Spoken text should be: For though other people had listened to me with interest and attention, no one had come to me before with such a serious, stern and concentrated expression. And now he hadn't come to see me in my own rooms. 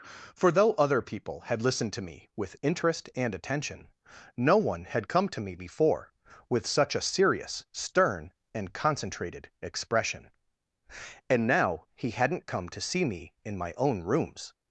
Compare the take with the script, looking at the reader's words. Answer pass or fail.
pass